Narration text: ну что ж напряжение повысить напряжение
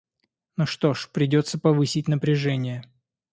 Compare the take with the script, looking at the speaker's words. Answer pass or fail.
fail